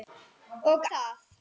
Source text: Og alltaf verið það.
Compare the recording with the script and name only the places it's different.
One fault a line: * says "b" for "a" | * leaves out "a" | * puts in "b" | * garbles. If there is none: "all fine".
* leaves out "alltaf verið"